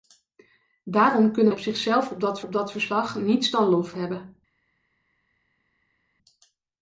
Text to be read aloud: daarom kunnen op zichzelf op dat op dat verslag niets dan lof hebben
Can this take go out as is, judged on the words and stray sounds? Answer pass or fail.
pass